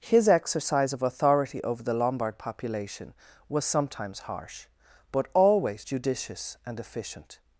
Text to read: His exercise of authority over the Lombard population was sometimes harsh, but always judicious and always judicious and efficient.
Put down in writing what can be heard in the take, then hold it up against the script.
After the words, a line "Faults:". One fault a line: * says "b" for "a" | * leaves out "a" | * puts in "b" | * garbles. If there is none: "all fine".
His exercise of authority over the Lombard population was sometimes harsh, but always judicious and efficient.
Faults:
* leaves out "always judicious and"